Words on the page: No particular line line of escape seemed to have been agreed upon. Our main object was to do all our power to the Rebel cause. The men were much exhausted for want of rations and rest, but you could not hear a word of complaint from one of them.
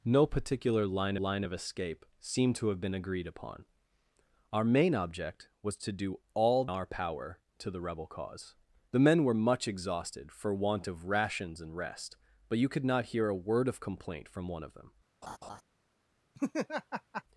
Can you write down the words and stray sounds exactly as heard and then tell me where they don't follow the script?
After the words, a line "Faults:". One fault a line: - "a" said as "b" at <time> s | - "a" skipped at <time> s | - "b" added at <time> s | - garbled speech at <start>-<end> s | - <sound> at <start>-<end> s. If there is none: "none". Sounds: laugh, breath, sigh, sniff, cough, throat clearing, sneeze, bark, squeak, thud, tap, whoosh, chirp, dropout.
No particular line line of escape seemed to have been agreed upon. Our main object was to do all our power to the Rebel cause. The men were much exhausted for want of rations and rest, but you could not hear a word of complaint from one of them.
Faults:
- laugh at 15.2-15.6 s
- laugh at 16.3-17.2 s